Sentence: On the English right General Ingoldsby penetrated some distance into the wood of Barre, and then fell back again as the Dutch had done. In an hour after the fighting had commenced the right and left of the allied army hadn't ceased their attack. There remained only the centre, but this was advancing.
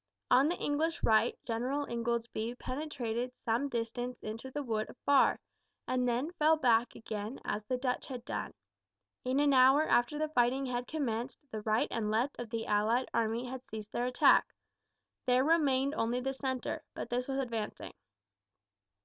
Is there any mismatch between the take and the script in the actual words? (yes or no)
yes